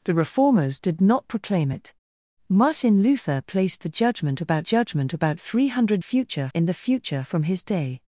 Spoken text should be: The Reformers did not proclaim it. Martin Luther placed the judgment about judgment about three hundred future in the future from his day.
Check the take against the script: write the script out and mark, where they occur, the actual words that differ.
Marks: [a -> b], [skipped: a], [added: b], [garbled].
The Reformers did not proclaim it. Martin Luther placed the judgment about judgment about three hundred future in the future from his day.